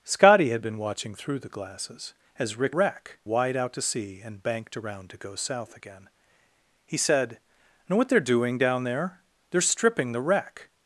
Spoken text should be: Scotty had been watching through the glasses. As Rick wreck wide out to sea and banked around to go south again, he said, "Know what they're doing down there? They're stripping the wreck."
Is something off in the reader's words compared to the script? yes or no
no